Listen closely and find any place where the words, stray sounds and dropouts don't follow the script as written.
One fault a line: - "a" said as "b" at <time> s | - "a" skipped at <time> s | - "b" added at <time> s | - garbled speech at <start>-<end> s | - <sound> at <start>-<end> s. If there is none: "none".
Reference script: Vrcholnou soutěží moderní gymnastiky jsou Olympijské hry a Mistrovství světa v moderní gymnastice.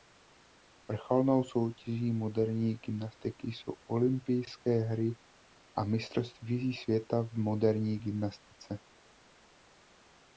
none